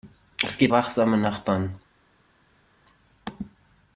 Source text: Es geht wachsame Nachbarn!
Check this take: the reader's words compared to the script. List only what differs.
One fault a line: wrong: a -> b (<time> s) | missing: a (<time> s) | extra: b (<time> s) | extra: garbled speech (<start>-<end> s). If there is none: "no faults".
no faults